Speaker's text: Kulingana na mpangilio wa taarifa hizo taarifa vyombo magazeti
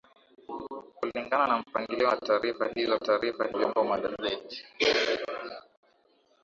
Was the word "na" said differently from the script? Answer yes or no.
no